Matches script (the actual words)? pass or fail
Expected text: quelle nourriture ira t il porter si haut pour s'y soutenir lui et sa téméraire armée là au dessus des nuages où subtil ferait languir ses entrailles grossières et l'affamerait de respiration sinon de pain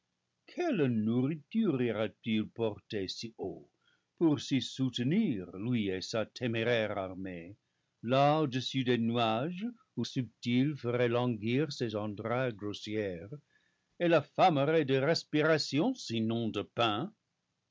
pass